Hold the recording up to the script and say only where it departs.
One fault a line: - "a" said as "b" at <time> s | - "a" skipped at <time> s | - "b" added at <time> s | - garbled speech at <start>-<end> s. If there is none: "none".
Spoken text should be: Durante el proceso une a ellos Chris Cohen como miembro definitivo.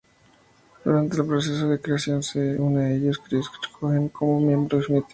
- "de creación se" added at 1.7 s